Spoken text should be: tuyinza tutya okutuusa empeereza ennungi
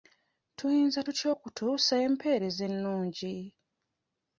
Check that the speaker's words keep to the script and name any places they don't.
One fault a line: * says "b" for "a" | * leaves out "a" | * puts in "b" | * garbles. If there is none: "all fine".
all fine